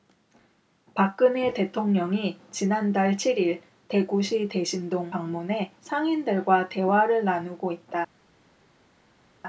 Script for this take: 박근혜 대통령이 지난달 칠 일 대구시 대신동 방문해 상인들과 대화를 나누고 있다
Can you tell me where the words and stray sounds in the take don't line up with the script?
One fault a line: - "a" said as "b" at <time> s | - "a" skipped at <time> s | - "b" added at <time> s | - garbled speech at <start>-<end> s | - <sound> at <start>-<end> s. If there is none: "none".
none